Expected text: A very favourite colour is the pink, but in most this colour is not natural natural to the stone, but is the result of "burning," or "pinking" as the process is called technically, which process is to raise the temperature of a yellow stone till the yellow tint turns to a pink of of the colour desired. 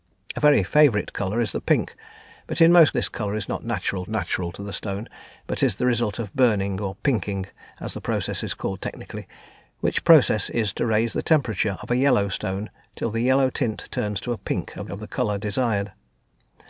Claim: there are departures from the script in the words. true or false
false